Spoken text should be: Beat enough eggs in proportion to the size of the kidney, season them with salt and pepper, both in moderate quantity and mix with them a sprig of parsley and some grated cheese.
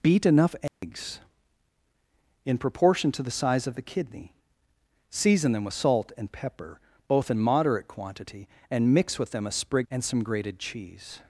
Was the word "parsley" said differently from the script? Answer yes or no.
yes